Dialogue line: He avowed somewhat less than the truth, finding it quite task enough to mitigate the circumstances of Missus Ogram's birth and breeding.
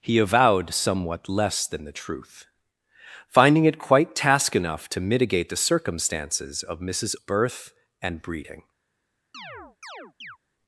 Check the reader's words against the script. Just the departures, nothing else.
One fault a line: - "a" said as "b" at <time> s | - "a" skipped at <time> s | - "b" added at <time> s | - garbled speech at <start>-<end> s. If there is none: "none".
- "Ogram's" skipped at 7.2 s